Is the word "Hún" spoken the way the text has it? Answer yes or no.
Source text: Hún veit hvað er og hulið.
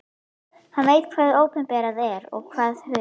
no